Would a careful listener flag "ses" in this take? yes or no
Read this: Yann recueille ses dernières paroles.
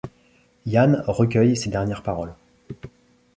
no